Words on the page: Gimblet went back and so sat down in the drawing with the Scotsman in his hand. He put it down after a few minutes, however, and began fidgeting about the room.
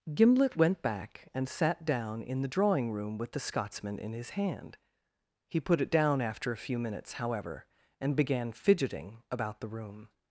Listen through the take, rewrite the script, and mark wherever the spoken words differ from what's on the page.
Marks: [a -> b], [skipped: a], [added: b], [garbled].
Gimblet went back and [skipped: so] sat down in the drawing [added: room] with the Scotsman in his hand. He put it down after a few minutes, however, and began fidgeting about the room.